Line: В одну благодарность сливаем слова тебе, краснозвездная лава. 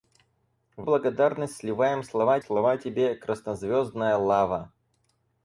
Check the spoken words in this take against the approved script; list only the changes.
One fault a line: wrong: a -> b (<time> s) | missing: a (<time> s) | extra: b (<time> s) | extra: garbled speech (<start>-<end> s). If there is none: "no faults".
missing: одну (0.9 s)
extra: слова (2.4 s)